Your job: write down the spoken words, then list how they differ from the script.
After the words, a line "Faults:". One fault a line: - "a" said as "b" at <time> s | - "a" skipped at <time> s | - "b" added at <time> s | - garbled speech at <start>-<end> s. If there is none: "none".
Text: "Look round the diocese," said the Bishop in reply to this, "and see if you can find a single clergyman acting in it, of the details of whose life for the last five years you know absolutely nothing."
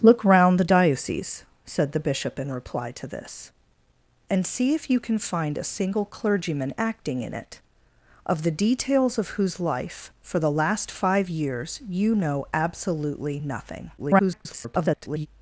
"Look round the diocese," said the Bishop in reply to this, "and see if you can find a single clergyman acting in it, of the details of whose life for the last five years you know absolutely nothing." [garbled]
Faults:
- garbled speech at 14.0-15.3 s